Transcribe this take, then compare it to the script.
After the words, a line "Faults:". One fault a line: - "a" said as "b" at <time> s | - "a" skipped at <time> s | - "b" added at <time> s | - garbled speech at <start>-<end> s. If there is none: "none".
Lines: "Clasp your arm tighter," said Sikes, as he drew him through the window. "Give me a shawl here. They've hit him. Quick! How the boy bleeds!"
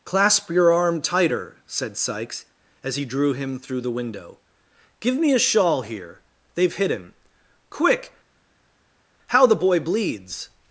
"Clasp your arm tighter," said Sikes, as he drew him through the window. "Give me a shawl here. They've hit him. Quick! How the boy bleeds!"
Faults:
none